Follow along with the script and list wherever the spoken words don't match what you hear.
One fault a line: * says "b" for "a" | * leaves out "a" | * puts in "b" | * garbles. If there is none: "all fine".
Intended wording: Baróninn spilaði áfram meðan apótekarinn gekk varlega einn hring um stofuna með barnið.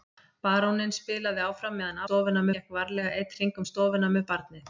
* says "stofuna" for "apótekarinn"